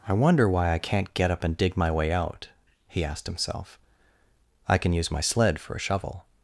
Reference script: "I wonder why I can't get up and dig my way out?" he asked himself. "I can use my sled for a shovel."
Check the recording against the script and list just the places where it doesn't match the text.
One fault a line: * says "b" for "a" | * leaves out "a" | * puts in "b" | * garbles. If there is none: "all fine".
all fine